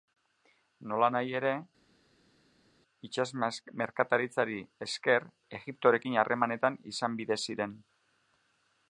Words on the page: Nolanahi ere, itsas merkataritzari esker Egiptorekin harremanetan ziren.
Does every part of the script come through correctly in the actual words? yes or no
no